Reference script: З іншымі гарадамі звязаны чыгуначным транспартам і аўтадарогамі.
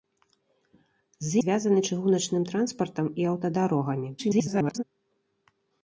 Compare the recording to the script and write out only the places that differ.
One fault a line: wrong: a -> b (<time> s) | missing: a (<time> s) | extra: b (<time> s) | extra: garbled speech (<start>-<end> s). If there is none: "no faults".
missing: іншымі гарадамі (1.4 s)
extra: garbled speech (4.2-4.8 s)